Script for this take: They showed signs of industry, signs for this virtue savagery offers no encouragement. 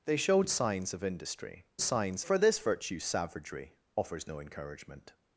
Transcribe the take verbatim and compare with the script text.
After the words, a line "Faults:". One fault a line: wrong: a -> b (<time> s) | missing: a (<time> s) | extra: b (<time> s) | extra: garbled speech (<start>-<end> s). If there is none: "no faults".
They showed signs of industry, signs for this virtue savagery offers no encouragement.
Faults:
no faults